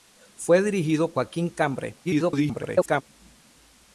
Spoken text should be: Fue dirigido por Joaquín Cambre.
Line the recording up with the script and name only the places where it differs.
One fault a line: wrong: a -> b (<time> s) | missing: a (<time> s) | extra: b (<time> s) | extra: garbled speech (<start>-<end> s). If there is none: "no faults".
missing: por (1.1 s)
extra: garbled speech (2.0-3.0 s)